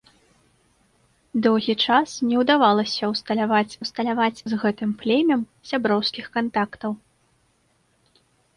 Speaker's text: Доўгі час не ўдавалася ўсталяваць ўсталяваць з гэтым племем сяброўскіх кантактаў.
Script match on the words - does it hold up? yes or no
yes